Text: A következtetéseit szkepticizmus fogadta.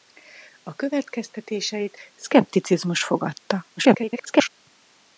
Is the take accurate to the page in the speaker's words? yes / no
no